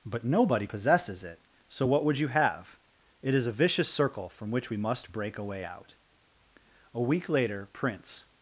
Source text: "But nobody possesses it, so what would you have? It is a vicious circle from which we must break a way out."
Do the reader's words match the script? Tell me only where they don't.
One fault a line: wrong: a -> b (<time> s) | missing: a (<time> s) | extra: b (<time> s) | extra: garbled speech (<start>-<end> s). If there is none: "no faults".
extra: A week later Prince (6.9 s)